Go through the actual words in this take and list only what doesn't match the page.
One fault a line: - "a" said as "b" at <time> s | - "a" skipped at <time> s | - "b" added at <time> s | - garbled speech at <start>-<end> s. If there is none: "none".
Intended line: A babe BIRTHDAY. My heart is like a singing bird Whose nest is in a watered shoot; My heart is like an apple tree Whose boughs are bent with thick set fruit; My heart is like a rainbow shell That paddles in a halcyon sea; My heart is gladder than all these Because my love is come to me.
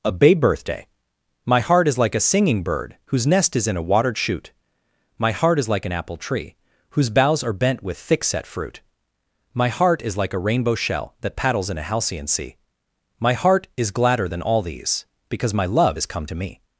none